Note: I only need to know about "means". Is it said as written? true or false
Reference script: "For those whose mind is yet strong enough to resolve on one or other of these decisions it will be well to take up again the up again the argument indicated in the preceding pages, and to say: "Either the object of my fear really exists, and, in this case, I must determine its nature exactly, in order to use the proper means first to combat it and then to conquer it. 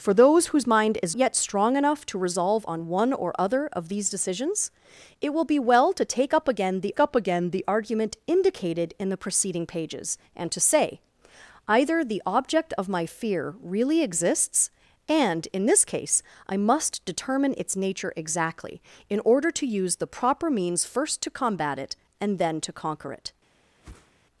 true